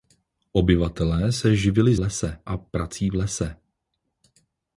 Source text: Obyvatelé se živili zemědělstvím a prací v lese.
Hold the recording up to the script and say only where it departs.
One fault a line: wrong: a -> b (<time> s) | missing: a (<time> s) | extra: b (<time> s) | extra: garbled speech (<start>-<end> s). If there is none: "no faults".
wrong: zemědělstvím -> lese (2.0 s)